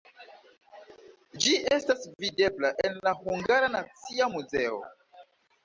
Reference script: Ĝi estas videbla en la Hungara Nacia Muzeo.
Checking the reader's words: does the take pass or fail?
pass